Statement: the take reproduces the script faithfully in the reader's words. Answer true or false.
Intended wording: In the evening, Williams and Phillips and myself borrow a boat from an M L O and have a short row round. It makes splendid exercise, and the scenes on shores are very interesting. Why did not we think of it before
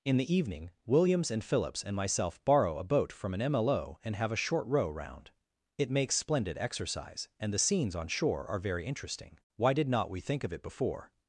false